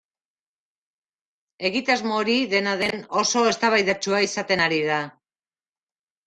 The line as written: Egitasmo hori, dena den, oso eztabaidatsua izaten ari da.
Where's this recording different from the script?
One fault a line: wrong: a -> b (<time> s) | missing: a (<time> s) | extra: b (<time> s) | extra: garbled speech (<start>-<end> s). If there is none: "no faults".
no faults